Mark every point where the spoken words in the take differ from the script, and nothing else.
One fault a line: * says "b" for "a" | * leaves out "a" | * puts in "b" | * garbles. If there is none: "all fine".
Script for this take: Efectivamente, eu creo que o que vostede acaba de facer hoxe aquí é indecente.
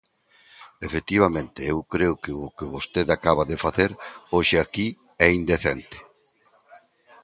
all fine